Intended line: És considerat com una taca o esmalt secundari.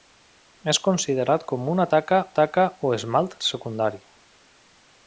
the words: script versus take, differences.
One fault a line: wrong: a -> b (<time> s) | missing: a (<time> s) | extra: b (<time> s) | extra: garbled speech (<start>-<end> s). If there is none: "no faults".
extra: taca (2.4 s)